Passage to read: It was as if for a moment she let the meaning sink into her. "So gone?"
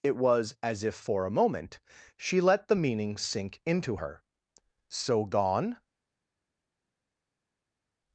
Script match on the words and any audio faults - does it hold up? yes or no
yes